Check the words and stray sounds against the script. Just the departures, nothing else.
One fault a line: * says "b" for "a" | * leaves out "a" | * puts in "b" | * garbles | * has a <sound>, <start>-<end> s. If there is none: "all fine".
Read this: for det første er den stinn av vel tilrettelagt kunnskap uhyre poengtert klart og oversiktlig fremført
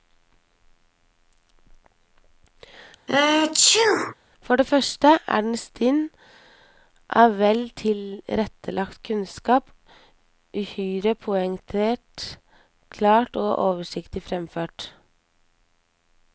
* has a sneeze, 3.1-4.1 s